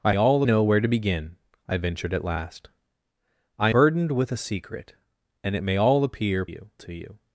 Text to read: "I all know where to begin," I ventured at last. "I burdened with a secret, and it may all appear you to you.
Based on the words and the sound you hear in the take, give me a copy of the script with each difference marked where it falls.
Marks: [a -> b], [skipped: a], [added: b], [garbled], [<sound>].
"I all know where to begin," I ventured at last. "I burdened with a secret, and it may all appear you to you.